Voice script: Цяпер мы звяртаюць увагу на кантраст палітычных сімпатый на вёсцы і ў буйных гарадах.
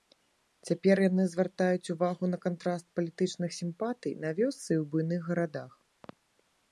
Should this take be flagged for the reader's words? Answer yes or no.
yes